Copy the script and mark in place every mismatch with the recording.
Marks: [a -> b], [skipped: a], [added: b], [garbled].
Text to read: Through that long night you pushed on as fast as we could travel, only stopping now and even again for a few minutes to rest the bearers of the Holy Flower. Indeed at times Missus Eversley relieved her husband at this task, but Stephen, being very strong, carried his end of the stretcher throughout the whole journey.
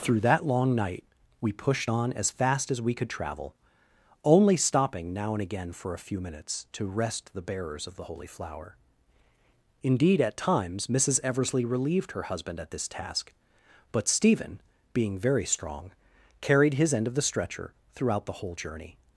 Through that long night [you -> we] pushed on as fast as we could travel, only stopping now and [skipped: even] again for a few minutes to rest the bearers of the Holy Flower. Indeed at times Missus Eversley relieved her husband at this task, but Stephen, being very strong, carried his end of the stretcher throughout the whole journey.